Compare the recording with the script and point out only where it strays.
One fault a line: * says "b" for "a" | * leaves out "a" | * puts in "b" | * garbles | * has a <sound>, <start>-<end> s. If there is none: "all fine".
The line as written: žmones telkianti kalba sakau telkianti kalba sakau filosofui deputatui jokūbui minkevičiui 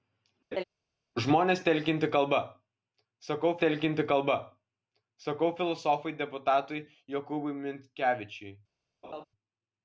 * has a laugh, 0.5-0.6 s
* has a laugh, 9.0-9.2 s